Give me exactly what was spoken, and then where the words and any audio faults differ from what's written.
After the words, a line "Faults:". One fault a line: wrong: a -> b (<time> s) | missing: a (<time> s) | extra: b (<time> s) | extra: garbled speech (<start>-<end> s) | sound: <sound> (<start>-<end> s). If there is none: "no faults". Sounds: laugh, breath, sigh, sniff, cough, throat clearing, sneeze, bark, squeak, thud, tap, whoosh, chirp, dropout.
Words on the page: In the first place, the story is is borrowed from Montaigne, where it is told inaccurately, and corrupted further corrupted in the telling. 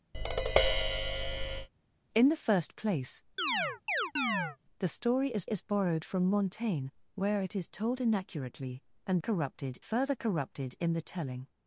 In the first place, the story is is borrowed from Montaigne, where it is told inaccurately, and corrupted further corrupted in the telling.
Faults:
sound: tap (0.1-1.7 s)
sound: chirp (3.4-4.6 s)